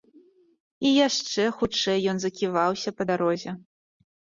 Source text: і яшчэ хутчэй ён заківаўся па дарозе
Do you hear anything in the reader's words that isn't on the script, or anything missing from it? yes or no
no